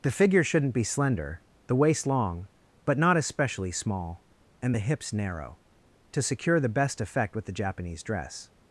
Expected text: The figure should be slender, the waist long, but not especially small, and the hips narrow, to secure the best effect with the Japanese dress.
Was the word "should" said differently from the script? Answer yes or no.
yes